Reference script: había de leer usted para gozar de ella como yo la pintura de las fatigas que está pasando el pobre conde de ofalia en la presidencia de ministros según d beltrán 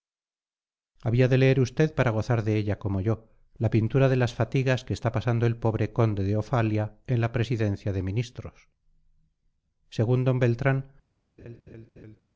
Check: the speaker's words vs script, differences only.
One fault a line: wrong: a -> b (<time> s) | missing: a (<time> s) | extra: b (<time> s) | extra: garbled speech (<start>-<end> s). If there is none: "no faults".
no faults